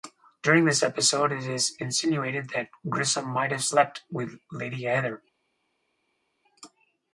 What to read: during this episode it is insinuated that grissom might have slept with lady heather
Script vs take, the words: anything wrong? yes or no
no